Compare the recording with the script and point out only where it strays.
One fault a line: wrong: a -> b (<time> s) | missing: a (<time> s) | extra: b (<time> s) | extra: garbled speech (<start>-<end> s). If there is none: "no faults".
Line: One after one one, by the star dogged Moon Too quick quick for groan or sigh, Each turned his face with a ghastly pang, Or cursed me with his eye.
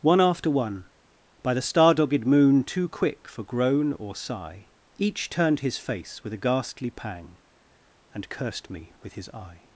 missing: one (0.8 s)
missing: quick (3.3 s)
wrong: Or -> And (8.1 s)